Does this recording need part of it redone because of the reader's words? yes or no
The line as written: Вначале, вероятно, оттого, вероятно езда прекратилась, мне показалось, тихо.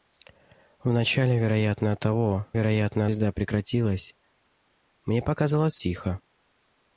no